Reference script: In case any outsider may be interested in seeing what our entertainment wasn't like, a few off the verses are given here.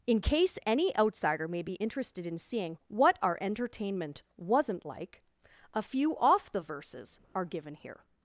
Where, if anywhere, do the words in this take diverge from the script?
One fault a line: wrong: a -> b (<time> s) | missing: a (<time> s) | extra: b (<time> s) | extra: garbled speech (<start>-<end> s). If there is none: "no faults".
no faults